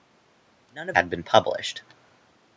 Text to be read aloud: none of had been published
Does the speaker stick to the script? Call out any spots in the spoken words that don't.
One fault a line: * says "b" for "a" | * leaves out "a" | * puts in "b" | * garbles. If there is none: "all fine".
all fine